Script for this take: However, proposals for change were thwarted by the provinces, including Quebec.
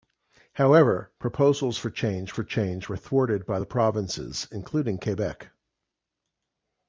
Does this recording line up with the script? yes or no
no